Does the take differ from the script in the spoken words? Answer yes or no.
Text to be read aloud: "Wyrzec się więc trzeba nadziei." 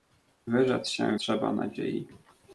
yes